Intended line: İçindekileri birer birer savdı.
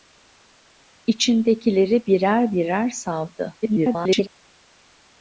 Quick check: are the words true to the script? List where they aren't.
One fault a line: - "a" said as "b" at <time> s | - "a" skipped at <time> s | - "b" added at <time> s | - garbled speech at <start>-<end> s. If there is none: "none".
- garbled speech at 3.6-4.3 s